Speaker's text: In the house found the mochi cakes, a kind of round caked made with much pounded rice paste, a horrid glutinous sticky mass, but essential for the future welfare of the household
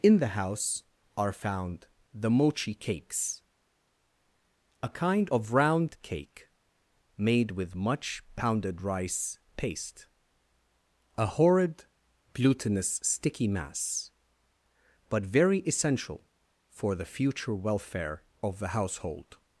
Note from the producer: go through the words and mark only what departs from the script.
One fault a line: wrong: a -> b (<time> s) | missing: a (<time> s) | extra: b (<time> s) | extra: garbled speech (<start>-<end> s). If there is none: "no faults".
extra: are (1.1 s)
wrong: caked -> cake (6.0 s)
extra: very (15.2 s)